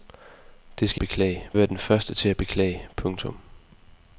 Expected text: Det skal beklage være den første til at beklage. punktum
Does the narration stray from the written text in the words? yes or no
no